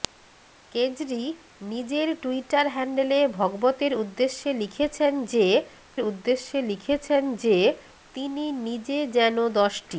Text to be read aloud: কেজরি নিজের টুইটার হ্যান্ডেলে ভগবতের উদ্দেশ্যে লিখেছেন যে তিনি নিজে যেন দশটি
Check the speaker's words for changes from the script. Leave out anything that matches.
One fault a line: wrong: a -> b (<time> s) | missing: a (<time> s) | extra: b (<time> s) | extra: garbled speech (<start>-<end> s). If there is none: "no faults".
extra: উদ্দেশ্যে লিখেছেন যে (6.0 s)